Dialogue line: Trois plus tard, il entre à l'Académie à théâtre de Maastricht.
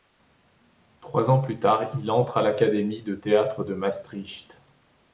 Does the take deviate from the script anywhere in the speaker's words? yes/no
yes